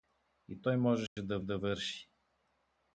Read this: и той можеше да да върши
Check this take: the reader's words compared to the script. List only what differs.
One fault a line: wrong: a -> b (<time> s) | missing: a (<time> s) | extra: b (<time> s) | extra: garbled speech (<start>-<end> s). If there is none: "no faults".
no faults